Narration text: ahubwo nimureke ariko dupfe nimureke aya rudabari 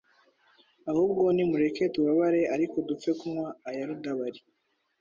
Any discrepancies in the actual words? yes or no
yes